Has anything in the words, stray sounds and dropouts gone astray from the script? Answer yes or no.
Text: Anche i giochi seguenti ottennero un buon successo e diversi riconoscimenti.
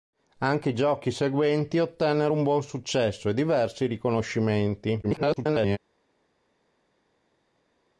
yes